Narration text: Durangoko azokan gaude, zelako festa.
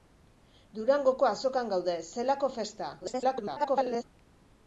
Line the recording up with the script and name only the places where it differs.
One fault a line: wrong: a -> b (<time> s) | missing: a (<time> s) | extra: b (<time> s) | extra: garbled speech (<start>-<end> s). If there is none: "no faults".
extra: garbled speech (3.0-4.0 s)